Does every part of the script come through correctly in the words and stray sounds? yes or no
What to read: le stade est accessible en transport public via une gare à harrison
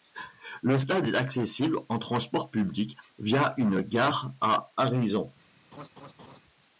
no